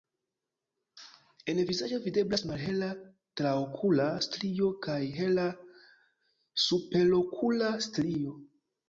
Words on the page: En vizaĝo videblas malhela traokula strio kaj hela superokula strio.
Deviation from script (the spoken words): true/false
false